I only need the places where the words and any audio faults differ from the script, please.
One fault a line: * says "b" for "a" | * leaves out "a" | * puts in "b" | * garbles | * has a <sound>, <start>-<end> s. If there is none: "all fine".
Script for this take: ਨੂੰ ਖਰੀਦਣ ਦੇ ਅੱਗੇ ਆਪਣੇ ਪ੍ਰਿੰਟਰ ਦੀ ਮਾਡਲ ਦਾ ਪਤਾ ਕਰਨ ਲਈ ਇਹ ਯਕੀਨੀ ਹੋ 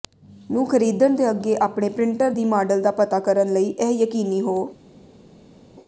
all fine